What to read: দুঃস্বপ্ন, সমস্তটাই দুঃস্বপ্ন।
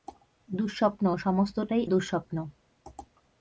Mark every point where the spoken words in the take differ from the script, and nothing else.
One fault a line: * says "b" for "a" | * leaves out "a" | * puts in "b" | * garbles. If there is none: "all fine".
all fine